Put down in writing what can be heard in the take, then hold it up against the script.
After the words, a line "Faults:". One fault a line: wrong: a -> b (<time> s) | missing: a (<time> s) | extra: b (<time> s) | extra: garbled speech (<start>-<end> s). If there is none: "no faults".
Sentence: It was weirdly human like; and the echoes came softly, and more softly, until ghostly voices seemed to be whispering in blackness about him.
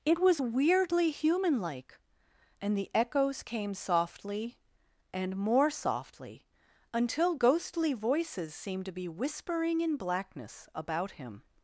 It was weirdly human like; and the echoes came softly, and more softly, until ghostly voices seemed to be whispering in blackness about him.
Faults:
no faults